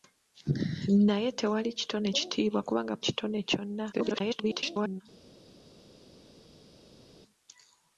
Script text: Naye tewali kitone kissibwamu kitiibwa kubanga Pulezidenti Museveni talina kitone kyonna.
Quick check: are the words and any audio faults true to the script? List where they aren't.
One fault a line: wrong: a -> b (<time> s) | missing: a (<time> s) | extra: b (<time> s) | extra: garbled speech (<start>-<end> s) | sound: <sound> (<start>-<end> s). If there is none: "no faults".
missing: kissibwamu (2.1 s)
missing: Pulezidenti Museveni talina (3.0 s)
extra: garbled speech (3.9-5.0 s)